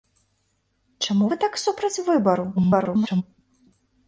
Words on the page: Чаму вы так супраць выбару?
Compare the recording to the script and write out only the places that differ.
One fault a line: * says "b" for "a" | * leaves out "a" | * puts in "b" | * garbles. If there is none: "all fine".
* garbles